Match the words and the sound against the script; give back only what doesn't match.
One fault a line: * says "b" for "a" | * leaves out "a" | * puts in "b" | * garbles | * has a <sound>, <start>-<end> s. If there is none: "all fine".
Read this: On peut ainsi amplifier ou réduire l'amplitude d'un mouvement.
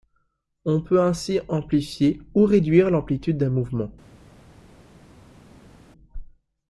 all fine